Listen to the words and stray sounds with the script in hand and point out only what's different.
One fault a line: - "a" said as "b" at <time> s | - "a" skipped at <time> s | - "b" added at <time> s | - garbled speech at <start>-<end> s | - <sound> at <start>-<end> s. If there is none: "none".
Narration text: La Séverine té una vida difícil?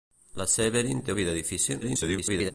- "una" skipped at 1.1 s
- garbled speech at 1.8-2.5 s